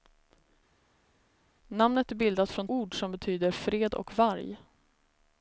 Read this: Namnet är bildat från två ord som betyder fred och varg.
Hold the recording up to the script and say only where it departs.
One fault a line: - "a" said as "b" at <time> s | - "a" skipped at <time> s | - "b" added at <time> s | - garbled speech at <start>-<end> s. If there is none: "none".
- "två" skipped at 2.7 s